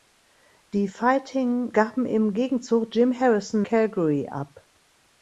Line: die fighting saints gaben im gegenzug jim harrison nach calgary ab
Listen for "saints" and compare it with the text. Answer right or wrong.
wrong